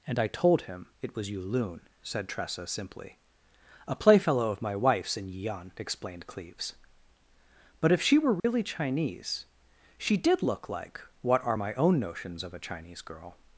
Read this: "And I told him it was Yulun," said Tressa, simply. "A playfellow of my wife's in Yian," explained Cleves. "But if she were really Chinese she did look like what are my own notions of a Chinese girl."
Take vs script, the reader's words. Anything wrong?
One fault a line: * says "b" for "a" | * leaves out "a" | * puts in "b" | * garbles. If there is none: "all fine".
all fine